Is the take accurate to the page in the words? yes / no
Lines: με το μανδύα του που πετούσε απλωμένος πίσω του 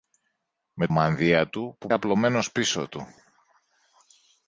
no